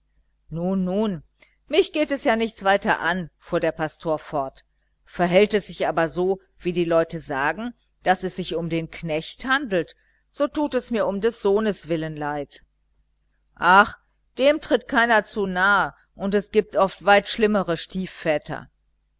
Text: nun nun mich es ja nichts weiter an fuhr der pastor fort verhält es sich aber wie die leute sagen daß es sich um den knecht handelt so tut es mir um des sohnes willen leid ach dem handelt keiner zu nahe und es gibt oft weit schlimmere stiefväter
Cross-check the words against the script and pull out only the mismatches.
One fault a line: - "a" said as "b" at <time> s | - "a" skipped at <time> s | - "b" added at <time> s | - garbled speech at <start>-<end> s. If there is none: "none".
- "geht" added at 1.9 s
- "so" added at 6.1 s
- "handelt" said as "tritt" at 14.6 s